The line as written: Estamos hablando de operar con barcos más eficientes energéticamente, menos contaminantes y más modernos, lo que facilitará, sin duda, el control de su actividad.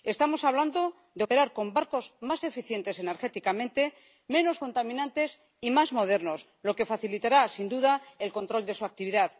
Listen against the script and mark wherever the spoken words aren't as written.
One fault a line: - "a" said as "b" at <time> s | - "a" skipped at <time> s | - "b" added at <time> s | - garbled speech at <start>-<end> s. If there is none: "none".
none